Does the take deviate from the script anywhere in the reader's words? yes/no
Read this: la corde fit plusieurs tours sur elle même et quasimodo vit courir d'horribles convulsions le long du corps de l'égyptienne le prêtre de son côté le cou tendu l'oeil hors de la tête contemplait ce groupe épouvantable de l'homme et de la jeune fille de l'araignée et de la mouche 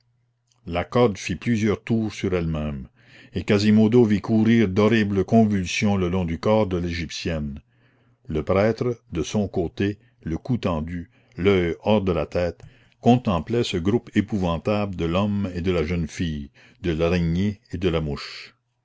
no